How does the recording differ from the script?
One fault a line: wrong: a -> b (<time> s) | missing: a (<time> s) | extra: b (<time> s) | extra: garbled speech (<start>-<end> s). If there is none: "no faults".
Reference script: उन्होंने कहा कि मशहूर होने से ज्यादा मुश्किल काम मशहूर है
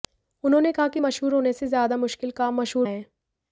no faults